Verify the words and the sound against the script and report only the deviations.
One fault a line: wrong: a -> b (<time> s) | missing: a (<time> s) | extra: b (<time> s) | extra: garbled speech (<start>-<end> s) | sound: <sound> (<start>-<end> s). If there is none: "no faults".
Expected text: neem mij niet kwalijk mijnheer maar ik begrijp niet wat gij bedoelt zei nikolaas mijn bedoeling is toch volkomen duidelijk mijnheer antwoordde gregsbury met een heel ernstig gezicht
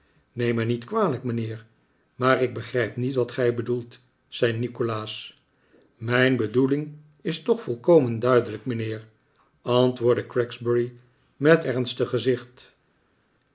missing: een heel (11.6 s)